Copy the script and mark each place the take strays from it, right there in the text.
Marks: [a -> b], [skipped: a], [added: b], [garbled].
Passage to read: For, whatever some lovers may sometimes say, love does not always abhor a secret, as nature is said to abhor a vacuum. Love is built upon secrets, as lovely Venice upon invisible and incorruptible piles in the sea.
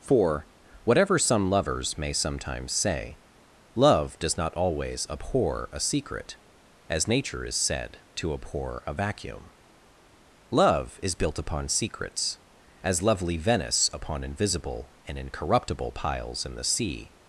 For, whatever some lovers may sometimes say, love does not always abhor a secret, as nature is said to abhor a vacuum. Love is built upon secrets, as lovely Venice upon invisible and incorruptible piles in the sea.